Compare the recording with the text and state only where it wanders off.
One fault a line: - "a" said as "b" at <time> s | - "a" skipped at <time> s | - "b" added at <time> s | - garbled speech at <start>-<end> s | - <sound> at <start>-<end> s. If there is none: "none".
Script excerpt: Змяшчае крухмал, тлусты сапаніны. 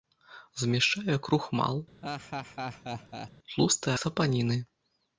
- laugh at 2.0-3.3 s